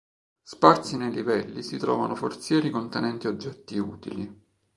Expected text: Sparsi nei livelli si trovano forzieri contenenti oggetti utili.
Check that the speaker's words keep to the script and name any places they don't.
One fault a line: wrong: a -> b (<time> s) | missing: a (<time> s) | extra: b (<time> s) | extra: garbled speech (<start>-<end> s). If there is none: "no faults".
no faults